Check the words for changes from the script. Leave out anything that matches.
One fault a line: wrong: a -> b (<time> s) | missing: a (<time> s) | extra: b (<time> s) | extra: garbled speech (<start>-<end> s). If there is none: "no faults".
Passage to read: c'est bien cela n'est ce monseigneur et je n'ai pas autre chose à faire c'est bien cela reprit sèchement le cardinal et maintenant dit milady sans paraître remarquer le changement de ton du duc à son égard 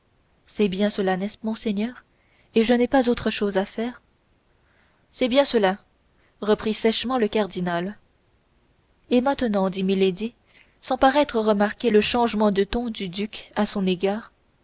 no faults